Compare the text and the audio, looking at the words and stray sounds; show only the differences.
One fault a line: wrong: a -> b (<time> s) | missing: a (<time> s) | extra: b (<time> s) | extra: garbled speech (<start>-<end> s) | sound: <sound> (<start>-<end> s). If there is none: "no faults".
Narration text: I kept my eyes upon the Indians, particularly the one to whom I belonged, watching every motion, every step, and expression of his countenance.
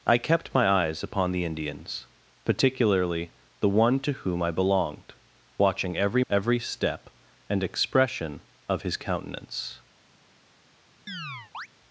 missing: motion (6.2 s)
sound: chirp (11.1-11.7 s)